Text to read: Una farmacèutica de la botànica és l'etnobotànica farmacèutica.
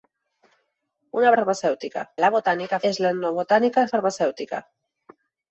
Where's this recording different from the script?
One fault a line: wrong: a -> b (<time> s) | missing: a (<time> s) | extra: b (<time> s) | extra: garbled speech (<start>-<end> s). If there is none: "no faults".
no faults